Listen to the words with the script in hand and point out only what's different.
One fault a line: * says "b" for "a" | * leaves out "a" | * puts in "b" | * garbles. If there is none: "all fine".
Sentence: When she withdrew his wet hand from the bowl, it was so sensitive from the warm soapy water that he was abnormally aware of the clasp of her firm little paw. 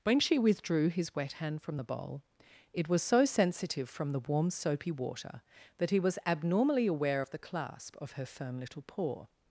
all fine